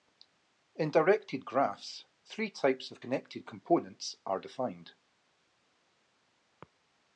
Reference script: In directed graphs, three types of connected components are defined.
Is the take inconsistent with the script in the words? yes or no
no